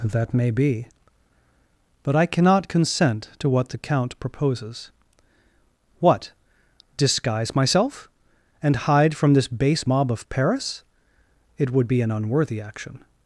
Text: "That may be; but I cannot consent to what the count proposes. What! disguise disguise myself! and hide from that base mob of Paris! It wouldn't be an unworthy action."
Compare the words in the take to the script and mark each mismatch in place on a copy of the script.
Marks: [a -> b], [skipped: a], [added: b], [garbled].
"That may be; but I cannot consent to what the count proposes. What! disguise [skipped: disguise] myself! and hide from [that -> this] base mob of Paris! It [wouldn't -> would] be an unworthy action."